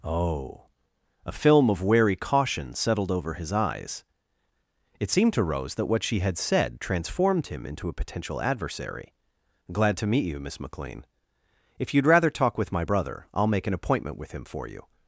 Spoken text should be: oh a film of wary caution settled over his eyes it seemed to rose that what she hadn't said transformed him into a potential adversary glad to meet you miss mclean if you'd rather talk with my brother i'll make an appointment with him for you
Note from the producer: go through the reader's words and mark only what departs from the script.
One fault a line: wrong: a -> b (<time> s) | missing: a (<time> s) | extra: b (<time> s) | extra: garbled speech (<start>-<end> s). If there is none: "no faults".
wrong: hadn't -> had (6.2 s)